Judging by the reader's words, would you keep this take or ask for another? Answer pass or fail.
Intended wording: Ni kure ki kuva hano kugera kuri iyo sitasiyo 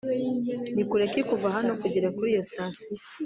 pass